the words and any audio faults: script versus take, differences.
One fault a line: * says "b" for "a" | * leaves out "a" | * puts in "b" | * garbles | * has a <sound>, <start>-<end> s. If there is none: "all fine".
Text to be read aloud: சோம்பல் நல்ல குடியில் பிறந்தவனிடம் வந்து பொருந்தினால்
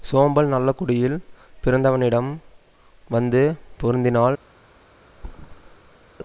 * has a thud, 5.1-6.1 s